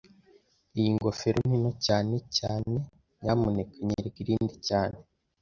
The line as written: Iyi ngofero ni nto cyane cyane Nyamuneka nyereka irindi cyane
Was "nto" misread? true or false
false